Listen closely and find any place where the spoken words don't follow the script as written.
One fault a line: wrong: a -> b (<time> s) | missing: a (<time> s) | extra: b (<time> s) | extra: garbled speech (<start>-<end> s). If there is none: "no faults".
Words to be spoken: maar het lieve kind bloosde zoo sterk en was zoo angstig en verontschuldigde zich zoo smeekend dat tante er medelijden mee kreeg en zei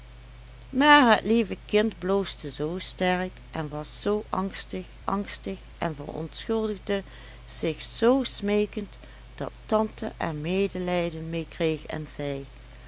extra: angstig (5.0 s)